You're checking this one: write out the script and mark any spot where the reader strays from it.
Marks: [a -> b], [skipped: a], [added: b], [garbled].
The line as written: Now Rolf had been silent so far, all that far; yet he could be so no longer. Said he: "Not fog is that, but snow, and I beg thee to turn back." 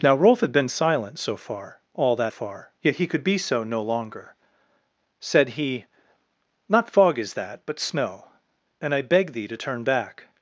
Now Rolf had been silent so far, all that far; yet he could be so no longer. Said he: "Not fog is that, but snow, and I beg thee to turn back."